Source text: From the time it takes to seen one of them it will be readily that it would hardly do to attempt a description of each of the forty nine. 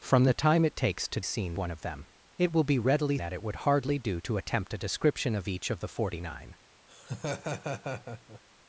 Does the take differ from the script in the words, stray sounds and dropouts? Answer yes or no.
yes